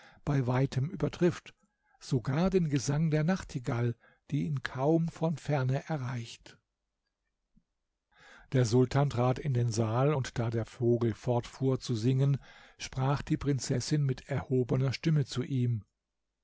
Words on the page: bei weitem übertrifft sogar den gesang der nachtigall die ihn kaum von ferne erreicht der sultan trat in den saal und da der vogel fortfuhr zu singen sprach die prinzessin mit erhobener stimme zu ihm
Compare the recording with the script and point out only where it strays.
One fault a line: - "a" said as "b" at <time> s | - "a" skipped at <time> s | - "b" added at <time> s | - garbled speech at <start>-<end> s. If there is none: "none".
none